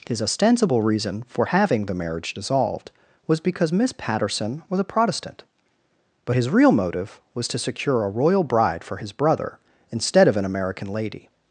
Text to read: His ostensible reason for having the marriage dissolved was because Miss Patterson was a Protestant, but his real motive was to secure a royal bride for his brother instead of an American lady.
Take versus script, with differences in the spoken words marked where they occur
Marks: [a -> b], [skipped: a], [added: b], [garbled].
His ostensible reason for having the marriage dissolved was because Miss Patterson was a Protestant, but his real motive was to secure a royal bride for his brother instead of an American lady.